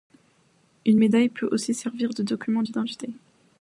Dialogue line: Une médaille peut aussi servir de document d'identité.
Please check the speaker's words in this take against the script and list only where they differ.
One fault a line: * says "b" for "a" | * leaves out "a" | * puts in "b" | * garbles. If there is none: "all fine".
all fine